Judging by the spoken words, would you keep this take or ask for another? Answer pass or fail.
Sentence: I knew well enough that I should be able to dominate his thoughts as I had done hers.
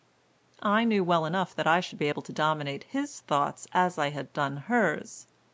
pass